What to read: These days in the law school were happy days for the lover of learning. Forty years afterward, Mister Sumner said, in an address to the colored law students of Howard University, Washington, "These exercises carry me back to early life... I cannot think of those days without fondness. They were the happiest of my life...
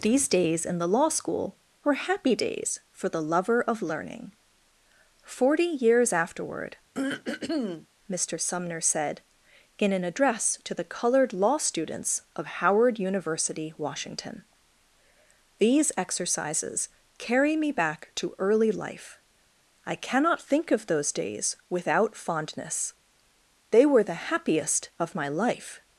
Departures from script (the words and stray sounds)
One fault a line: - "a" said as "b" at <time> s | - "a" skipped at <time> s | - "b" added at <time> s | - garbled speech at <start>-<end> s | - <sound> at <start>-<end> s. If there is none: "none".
- throat clearing at 6.9-7.9 s